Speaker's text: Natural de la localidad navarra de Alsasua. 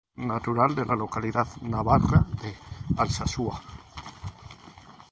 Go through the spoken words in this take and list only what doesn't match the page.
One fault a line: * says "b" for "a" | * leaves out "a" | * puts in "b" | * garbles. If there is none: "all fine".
all fine